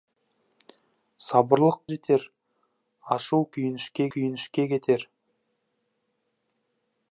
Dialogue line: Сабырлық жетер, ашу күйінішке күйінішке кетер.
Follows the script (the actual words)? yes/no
yes